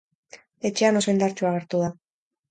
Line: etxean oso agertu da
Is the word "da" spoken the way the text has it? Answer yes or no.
yes